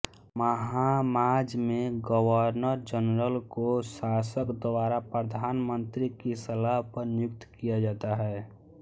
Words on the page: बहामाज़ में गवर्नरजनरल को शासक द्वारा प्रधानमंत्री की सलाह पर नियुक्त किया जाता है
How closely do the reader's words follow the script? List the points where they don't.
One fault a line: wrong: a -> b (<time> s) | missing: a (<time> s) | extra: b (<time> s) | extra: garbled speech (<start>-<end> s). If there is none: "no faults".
no faults